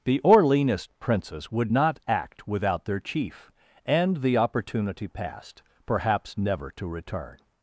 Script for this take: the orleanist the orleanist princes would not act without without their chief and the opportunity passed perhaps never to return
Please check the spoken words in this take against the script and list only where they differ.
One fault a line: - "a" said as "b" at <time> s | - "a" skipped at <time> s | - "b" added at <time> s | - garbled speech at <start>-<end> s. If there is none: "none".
- "the orleanist" skipped at 0.9 s
- "without" skipped at 2.8 s